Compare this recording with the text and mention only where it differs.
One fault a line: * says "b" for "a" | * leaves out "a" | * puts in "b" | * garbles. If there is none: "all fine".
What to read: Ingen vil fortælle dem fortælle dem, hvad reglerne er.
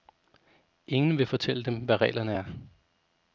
* leaves out "fortælle dem"